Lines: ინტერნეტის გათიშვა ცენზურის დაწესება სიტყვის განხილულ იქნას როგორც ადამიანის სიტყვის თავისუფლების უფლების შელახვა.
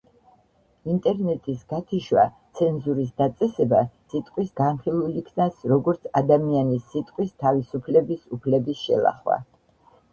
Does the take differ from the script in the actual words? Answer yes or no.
no